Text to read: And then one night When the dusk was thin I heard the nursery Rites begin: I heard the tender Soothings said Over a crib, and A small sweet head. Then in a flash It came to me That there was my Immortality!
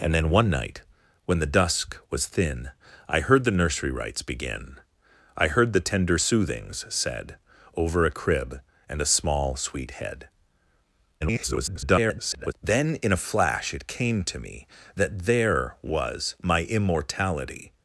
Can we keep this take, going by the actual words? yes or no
no